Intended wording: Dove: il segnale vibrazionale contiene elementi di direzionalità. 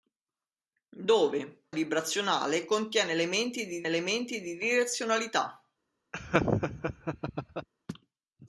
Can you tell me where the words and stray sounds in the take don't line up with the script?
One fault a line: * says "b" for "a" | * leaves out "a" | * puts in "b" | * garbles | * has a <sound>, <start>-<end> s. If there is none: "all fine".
* says "vibrazionale contiene elementi di" for "il segnale vibrazionale contiene"
* has a laugh, 6.1-7.7 s